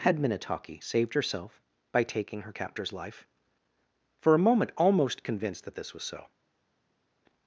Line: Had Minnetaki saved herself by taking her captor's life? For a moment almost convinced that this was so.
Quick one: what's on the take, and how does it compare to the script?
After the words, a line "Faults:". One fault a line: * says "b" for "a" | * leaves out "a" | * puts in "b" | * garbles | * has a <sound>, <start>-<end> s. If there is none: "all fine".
Had Minnetaki saved herself by taking her captor's life? For a moment almost convinced that this was so.
Faults:
all fine